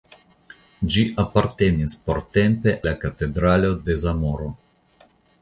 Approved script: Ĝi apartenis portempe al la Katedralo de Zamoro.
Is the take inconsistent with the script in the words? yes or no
yes